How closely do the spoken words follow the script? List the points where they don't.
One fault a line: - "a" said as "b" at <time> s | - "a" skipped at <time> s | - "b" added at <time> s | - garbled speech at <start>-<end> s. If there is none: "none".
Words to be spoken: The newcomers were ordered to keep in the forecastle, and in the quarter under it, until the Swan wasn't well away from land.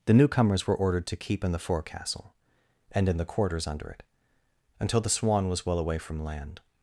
- "quarter" said as "quarters" at 3.2 s
- "wasn't" said as "was" at 5.5 s